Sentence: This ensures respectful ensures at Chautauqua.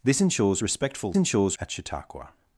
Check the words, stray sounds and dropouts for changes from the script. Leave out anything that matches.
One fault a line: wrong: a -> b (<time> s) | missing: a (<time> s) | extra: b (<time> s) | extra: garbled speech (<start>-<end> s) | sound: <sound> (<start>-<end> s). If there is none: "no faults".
no faults